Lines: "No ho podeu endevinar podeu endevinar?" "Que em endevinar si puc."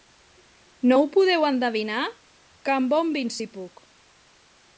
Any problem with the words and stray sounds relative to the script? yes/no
yes